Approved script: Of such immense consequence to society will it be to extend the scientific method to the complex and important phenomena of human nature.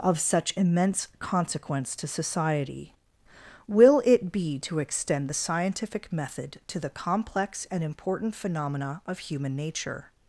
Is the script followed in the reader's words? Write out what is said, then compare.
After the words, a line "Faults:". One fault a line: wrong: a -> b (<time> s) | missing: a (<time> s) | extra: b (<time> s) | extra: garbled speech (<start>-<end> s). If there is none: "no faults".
Of such immense consequence to society will it be to extend the scientific method to the complex and important phenomena of human nature.
Faults:
no faults